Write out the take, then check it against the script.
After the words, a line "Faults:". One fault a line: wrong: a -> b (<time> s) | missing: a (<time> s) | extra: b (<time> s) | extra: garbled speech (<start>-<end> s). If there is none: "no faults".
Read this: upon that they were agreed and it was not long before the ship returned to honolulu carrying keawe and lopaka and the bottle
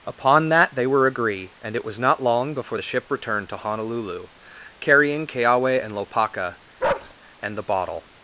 upon that they were agree and it was not long before the ship returned to honolulu carrying keawe and lopaka and the bottle
Faults:
wrong: agreed -> agree (1.1 s)